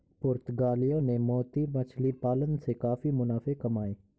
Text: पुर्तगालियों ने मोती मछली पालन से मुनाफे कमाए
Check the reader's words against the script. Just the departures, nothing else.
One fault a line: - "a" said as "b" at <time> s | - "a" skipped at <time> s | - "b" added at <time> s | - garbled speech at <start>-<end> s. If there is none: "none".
- "काफी" added at 2.8 s